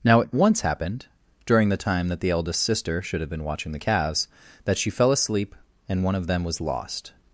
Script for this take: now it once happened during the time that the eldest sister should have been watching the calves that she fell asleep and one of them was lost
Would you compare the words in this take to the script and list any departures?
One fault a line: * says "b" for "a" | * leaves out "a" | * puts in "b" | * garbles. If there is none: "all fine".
all fine